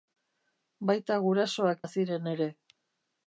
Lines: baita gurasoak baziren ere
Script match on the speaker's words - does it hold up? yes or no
yes